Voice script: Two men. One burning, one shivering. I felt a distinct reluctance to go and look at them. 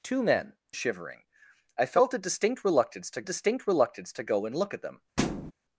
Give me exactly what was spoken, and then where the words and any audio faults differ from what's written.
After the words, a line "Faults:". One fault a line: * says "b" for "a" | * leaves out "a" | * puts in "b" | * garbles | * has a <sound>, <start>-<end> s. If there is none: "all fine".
Two men. Shivering. I felt a distinct reluctance to distinct reluctance to go and look at them.
Faults:
* leaves out "One burning one"
* puts in "distinct reluctance to"
* has a thud, 5.2-5.5 s